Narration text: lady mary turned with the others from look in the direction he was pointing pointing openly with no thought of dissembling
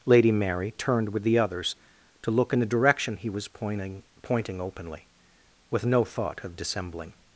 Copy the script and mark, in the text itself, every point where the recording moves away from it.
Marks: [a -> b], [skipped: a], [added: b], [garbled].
lady mary turned with the others [from -> to] look in the direction he was pointing pointing openly with no thought of dissembling